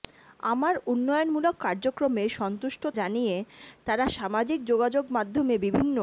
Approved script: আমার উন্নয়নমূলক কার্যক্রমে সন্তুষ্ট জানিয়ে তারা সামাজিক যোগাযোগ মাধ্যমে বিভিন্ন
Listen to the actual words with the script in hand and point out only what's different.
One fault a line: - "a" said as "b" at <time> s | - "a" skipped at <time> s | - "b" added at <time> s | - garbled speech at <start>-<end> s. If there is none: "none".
none